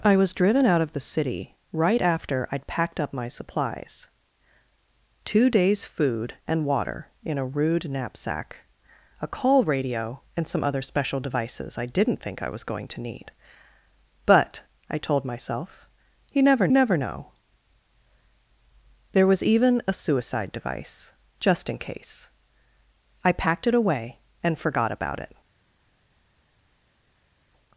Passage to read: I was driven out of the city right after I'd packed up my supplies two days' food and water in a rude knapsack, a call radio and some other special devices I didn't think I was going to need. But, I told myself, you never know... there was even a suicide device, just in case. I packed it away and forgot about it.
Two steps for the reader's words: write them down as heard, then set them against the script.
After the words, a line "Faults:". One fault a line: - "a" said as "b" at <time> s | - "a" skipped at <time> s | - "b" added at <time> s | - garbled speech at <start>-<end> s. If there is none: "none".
I was driven out of the city right after I'd packed up my supplies two days' food and water in a rude knapsack, a call radio and some other special devices I didn't think I was going to need. But, I told myself, you never never know... there was even a suicide device, just in case. I packed it away and forgot about it.
Faults:
- "never" added at 16.7 s